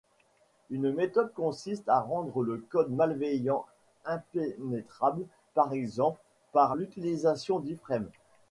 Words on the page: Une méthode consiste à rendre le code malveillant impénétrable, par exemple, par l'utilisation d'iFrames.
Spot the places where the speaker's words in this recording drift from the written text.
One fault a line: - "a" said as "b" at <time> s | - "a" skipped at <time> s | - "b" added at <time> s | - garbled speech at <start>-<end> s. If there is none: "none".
none